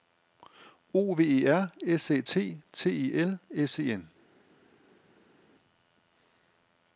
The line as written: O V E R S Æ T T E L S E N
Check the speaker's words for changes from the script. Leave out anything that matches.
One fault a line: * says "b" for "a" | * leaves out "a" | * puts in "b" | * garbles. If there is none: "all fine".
all fine